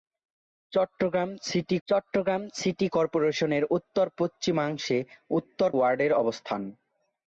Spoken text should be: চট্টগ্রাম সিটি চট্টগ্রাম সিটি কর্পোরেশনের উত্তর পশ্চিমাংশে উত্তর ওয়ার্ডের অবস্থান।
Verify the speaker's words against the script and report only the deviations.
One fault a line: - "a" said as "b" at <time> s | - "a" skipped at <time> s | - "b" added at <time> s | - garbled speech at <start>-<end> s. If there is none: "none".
none